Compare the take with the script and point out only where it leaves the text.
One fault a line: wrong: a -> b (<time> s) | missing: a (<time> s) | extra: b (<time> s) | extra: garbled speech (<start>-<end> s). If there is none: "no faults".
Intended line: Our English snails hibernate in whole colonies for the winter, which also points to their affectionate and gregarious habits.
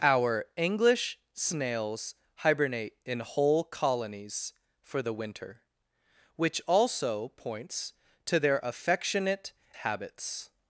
missing: and gregarious (9.5 s)